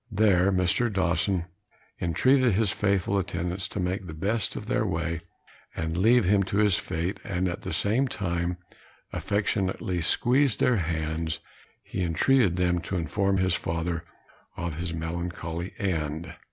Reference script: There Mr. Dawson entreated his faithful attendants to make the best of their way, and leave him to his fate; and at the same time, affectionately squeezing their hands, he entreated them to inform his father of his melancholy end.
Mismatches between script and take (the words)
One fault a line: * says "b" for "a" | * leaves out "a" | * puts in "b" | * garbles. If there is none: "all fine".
all fine